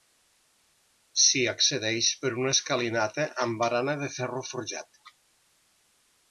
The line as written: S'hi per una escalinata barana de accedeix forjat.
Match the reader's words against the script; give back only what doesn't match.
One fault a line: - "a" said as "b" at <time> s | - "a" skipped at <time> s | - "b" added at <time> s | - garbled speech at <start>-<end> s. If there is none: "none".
- "accedeix" added at 1.5 s
- "amb" added at 3.5 s
- "accedeix" said as "ferro" at 4.2 s